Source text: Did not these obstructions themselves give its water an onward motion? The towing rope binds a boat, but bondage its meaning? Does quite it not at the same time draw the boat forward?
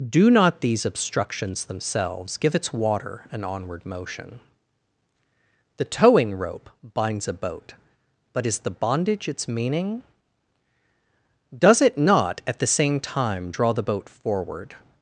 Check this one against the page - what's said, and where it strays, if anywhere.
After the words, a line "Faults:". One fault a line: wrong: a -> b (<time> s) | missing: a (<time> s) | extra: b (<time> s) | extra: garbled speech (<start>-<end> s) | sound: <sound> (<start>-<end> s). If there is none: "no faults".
Do not these obstructions themselves give its water an onward motion? The towing rope binds a boat, but is the bondage its meaning? Does it not at the same time draw the boat forward?
Faults:
wrong: Did -> Do (0.1 s)
extra: is the (8.5 s)
missing: quite (11.8 s)